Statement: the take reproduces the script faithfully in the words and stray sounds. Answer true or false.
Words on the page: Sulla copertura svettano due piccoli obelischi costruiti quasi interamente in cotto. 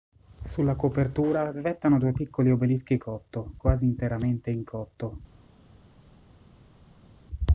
false